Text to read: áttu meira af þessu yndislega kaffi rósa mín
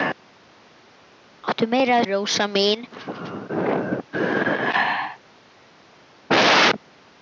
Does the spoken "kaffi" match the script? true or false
false